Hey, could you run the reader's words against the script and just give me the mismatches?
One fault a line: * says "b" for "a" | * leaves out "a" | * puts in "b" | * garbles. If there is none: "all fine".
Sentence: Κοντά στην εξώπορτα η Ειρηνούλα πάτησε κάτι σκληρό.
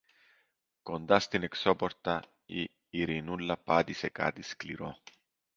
all fine